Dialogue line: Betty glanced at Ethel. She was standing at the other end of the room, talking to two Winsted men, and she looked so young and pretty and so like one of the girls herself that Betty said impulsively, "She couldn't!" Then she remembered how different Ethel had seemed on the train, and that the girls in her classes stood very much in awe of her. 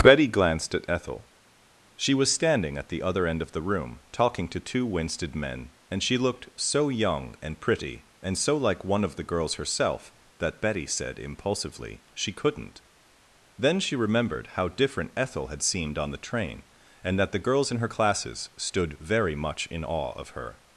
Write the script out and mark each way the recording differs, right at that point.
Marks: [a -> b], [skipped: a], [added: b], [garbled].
Betty glanced at Ethel. She was standing at the other end of the room, talking to two Winsted men, and she looked so young and pretty and so like one of the girls herself that Betty said impulsively, "She couldn't!" Then she remembered how different Ethel had seemed on the train, and that the girls in her classes stood very much in awe of her.